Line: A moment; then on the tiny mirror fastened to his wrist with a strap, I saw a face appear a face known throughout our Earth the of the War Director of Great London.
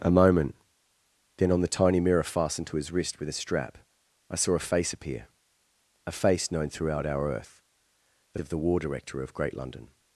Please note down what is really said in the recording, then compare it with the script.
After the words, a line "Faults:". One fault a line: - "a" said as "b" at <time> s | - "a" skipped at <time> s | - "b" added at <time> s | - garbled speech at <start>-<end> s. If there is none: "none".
A moment; then on the tiny mirror fastened to his wrist with a strap, I saw a face appear a face known throughout our Earth the of the War Director of Great London.
Faults:
none